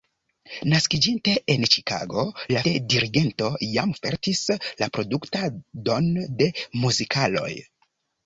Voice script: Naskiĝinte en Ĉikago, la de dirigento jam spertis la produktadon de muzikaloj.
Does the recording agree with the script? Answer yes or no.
yes